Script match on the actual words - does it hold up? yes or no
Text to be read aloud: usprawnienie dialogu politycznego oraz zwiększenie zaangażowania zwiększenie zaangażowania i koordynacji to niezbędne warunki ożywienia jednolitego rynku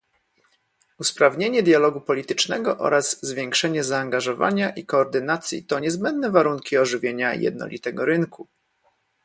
no